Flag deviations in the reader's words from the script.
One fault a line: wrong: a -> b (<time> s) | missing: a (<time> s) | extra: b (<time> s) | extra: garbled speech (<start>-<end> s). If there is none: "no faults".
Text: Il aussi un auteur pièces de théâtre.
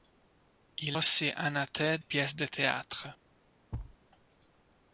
no faults